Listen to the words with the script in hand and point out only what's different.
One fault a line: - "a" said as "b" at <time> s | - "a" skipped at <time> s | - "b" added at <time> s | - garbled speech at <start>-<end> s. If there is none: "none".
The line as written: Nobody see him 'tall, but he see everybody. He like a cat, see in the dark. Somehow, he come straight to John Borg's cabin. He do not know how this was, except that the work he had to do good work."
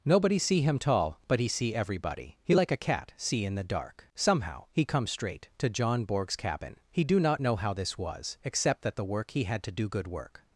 none